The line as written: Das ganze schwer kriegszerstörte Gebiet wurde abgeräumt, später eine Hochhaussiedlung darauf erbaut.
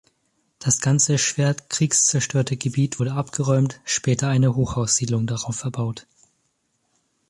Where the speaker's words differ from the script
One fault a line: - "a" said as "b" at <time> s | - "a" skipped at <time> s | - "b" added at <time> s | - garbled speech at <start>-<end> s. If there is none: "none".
none